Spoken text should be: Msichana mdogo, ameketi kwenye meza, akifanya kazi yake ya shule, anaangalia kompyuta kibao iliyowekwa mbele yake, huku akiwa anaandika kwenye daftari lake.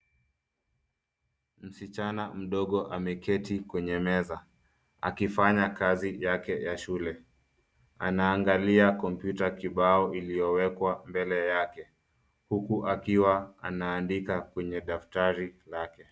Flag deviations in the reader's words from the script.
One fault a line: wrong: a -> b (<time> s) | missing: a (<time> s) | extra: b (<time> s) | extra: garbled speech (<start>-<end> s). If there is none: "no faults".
no faults